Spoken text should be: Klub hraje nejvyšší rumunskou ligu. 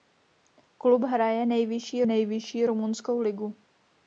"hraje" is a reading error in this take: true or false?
false